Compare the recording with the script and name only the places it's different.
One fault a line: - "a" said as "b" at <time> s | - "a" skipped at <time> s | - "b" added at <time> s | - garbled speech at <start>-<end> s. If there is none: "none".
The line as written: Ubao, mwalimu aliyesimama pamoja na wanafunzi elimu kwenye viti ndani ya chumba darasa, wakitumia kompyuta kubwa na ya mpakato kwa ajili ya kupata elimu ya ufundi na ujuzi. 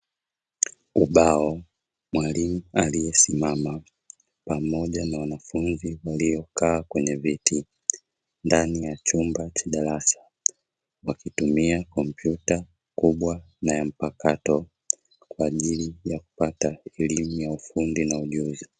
- "elimu" said as "waliokaa" at 6.0 s
- "cha" added at 9.5 s